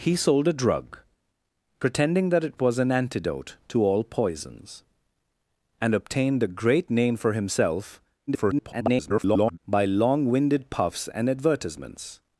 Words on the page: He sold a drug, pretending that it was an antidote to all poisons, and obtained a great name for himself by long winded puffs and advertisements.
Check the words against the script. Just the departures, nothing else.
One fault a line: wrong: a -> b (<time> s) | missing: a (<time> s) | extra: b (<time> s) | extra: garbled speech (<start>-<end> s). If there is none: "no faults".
extra: garbled speech (8.3-9.6 s)